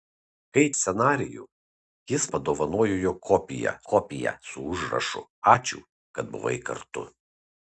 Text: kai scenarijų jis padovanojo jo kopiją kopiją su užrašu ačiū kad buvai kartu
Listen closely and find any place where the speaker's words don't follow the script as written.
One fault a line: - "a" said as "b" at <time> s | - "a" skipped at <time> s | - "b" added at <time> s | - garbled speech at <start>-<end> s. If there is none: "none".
none